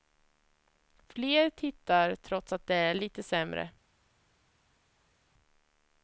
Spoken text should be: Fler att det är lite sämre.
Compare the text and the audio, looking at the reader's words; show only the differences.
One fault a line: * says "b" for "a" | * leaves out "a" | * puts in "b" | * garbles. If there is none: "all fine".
* puts in "tittar trots"